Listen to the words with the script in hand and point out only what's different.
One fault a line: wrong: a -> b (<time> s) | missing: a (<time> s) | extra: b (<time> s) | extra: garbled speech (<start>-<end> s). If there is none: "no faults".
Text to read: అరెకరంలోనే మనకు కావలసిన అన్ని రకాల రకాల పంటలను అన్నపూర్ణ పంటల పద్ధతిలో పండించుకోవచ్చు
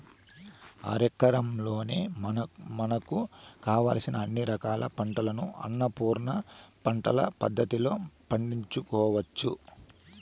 missing: రకాల (4.9 s)